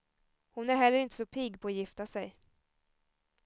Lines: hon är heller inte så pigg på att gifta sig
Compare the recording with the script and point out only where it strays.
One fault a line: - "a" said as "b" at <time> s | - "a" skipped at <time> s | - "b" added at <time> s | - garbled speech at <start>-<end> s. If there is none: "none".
none